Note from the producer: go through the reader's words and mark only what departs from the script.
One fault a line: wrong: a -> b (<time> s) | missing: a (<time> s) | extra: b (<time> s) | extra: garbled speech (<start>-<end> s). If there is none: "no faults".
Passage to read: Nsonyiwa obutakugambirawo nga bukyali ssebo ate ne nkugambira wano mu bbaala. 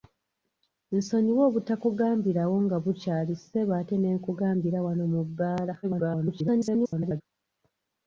extra: garbled speech (5.8-7.2 s)